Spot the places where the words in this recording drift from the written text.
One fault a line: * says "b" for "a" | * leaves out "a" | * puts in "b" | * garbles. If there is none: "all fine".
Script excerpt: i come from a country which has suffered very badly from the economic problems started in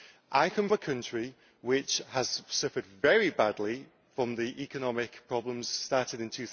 * leaves out "from"